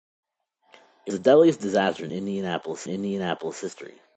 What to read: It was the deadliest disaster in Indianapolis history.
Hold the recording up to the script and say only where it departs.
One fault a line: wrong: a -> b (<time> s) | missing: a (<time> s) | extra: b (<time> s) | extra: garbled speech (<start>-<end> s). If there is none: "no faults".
missing: was (1.1 s)
extra: Indianapolis (2.9 s)